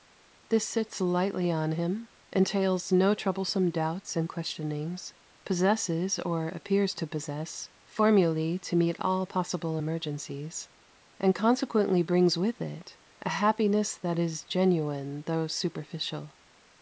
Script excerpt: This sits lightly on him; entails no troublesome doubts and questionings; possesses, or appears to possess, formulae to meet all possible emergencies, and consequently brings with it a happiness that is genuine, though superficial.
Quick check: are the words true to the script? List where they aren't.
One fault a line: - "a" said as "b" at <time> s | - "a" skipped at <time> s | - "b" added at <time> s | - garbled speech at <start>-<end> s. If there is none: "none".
none